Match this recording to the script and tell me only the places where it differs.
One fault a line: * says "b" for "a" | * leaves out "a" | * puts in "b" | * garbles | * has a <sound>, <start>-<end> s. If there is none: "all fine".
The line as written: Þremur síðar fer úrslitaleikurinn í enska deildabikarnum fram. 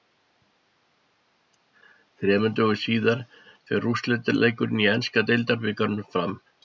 * puts in "dögum"